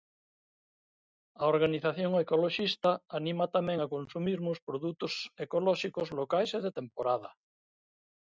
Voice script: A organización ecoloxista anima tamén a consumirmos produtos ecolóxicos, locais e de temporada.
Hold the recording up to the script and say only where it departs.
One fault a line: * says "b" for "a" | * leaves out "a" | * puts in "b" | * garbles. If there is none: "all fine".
all fine